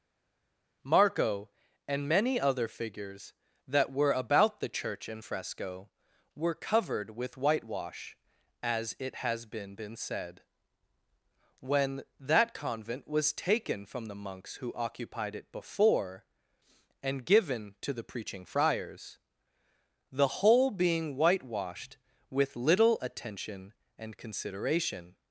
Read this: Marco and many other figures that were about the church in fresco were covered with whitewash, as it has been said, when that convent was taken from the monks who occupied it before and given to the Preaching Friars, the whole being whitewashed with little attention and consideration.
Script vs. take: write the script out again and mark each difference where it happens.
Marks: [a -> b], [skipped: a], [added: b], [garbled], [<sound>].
Marco and many other figures that were about the church in fresco were covered with whitewash, as it has been [added: been] said, when that convent was taken from the monks who occupied it before and given to the Preaching Friars, the whole being whitewashed with little attention and consideration.